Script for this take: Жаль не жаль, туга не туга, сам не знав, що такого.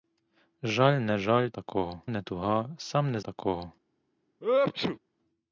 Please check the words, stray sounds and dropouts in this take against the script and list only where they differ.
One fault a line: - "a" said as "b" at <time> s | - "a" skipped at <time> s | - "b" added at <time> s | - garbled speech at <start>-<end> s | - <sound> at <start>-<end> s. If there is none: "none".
- "туга" said as "такого" at 1.5 s
- "знав що" skipped at 3.2 s
- sneeze at 4.4-5.0 s